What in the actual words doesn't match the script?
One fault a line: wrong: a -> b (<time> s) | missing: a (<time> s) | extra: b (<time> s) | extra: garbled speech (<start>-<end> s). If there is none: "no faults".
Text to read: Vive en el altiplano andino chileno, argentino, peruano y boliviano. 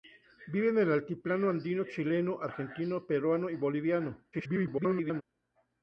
extra: garbled speech (4.3-5.2 s)